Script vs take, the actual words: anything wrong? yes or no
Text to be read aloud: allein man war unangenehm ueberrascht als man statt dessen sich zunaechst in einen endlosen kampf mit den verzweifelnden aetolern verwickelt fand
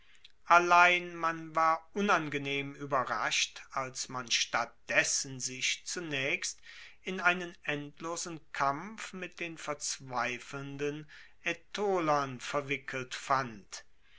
no